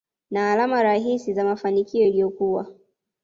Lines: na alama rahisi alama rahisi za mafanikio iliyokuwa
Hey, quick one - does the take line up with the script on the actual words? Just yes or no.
no